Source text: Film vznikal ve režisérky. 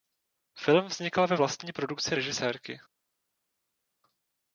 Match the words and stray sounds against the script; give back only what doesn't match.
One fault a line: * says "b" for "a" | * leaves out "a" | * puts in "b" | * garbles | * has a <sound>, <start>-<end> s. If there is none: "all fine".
* puts in "vlastní produkci"